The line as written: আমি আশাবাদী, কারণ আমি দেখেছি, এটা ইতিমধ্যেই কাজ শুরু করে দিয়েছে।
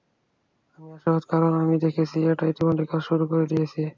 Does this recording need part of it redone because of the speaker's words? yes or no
no